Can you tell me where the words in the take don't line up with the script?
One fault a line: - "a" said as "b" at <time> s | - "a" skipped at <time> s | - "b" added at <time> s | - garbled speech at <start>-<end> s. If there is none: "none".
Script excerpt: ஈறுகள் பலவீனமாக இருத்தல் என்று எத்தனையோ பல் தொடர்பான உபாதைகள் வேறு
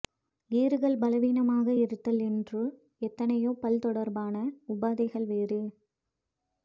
none